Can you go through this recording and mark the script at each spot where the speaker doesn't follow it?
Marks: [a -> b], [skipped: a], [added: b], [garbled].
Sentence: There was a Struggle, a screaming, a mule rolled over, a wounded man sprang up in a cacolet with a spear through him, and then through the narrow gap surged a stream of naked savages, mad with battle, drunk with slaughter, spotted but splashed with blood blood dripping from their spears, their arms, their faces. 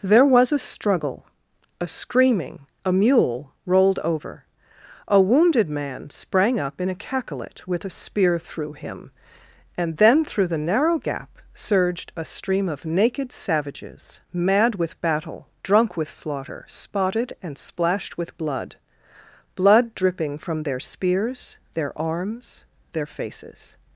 There was a Struggle, a screaming, a mule rolled over, a wounded man sprang up in a cacolet with a spear through him, and then through the narrow gap surged a stream of naked savages, mad with battle, drunk with slaughter, spotted [but -> and] splashed with blood blood dripping from their spears, their arms, their faces.